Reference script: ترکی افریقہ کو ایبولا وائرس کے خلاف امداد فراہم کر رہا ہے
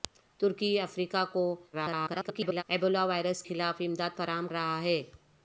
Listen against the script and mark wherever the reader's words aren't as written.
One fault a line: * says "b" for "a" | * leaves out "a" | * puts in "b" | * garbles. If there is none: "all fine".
* garbles
* leaves out "کے"
* leaves out "کر"